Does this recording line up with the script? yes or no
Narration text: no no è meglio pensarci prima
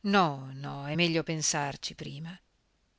yes